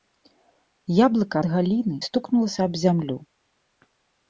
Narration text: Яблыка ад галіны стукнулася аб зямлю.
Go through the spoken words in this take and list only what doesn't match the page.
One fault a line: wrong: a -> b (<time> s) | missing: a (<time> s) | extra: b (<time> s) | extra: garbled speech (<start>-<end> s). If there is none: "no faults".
no faults